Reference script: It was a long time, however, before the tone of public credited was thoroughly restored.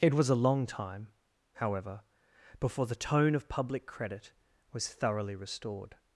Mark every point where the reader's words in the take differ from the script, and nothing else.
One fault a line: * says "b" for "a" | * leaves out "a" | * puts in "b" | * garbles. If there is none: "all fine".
* says "credit" for "credited"